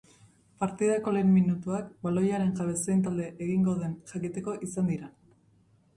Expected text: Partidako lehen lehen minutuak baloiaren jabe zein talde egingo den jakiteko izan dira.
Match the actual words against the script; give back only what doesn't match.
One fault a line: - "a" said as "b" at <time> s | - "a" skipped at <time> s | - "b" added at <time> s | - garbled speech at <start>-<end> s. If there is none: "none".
- "lehen" skipped at 1.3 s